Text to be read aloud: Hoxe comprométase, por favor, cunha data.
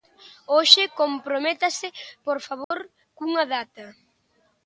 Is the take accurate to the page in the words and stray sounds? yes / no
no